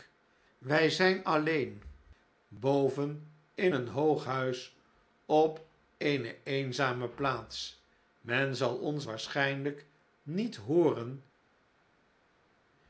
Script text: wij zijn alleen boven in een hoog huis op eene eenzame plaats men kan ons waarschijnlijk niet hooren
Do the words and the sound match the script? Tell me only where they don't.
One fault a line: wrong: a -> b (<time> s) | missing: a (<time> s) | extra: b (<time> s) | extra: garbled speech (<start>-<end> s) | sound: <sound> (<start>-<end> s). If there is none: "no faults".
wrong: kan -> zal (8.5 s)